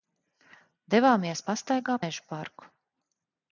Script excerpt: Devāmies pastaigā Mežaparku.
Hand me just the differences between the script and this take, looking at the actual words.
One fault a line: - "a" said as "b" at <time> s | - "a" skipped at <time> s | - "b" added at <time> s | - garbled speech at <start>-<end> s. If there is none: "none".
none